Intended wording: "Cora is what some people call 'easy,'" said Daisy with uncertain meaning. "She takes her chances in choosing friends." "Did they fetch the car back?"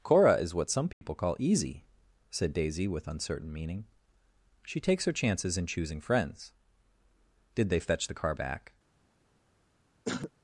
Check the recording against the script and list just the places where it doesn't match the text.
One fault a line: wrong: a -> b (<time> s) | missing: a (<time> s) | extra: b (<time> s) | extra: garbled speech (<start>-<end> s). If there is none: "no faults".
no faults